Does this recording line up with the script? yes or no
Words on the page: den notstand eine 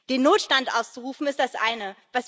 no